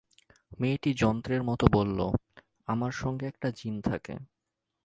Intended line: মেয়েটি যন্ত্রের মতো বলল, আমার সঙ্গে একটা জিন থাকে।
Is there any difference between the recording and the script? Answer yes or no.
no